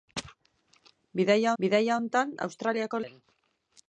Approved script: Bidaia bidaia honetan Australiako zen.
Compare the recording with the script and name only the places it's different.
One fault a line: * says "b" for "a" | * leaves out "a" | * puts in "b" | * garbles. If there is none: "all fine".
all fine